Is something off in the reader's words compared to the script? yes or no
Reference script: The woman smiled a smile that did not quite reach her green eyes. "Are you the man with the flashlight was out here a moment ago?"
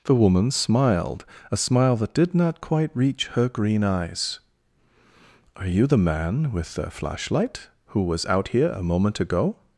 yes